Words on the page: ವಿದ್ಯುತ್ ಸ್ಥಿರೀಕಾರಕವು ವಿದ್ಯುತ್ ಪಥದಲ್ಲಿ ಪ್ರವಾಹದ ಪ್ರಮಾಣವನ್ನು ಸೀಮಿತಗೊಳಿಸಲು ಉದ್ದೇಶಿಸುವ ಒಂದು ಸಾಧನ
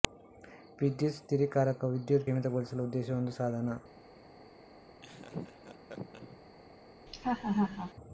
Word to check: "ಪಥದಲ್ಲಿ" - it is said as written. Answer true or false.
false